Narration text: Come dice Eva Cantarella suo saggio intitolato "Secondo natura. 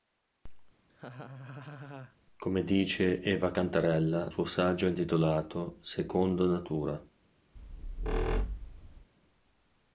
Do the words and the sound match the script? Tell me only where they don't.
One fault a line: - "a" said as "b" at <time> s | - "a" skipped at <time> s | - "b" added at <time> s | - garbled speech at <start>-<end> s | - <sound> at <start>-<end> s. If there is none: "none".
- laugh at 0.9-2.2 s
- squeak at 7.6-9.1 s